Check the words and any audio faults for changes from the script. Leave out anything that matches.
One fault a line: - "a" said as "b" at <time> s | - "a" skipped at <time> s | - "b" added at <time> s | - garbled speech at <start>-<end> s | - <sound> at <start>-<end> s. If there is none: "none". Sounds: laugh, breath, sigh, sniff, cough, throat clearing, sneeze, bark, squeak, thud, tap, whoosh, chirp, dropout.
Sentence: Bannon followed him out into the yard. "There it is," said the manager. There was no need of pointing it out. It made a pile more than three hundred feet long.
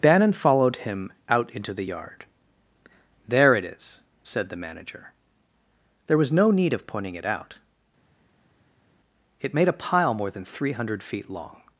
none